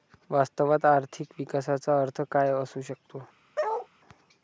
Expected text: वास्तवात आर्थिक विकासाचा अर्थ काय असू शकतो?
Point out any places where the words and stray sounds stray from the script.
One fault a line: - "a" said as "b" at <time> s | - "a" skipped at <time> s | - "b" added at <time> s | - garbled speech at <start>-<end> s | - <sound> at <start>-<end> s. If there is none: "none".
- bark at 3.6-3.9 s